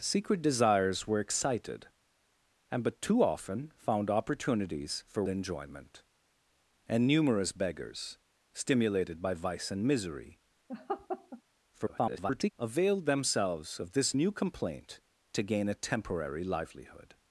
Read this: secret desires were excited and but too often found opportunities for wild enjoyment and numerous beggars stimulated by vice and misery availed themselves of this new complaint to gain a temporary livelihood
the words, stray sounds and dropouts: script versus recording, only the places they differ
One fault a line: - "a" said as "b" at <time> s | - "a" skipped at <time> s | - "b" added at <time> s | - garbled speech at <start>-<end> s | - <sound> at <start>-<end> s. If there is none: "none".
- "wild" skipped at 5.2 s
- laugh at 10.7-11.4 s
- garbled speech at 11.7-12.5 s